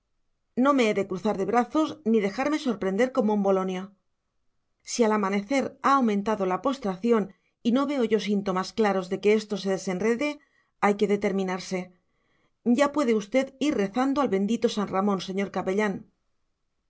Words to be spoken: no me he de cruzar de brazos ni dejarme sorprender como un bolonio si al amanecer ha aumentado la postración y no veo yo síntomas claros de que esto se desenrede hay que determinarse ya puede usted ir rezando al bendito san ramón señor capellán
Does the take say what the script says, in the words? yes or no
yes